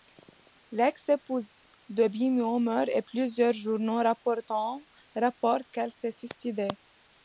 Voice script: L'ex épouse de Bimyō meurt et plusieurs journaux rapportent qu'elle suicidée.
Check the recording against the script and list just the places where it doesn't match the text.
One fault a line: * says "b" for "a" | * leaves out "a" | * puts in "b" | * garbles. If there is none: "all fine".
* puts in "s'est"